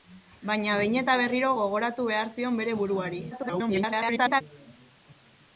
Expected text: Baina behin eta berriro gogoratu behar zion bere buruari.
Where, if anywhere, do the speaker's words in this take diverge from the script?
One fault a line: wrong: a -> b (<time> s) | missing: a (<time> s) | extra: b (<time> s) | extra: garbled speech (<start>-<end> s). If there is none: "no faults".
extra: garbled speech (3.3-4.4 s)